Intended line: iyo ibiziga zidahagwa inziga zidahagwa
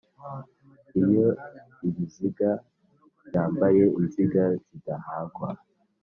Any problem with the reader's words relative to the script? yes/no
yes